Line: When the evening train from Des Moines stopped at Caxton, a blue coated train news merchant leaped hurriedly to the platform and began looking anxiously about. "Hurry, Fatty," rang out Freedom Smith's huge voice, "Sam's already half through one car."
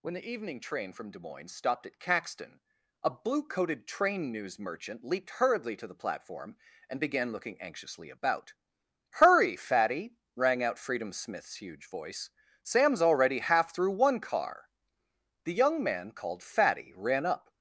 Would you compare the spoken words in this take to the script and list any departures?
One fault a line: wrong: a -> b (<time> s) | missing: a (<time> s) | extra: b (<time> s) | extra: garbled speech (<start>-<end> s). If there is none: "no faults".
extra: The young man called Fatty ran up (15.4 s)